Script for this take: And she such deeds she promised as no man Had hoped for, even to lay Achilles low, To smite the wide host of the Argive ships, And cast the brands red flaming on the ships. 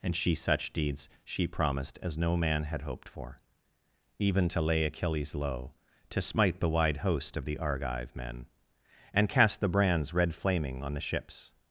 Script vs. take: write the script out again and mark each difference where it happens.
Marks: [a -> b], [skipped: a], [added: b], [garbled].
And she such deeds she promised as no man Had hoped for, even to lay Achilles low, To smite the wide host of the Argive [ships, -> men] And cast the brands red flaming on the ships.